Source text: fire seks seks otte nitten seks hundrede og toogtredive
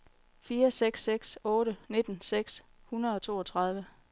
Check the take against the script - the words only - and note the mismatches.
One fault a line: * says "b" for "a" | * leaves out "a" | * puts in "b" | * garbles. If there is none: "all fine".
all fine